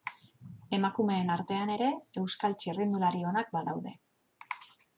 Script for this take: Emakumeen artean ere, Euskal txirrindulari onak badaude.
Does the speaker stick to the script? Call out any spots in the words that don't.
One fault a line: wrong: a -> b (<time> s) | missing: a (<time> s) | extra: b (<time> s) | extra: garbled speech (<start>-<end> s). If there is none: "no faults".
no faults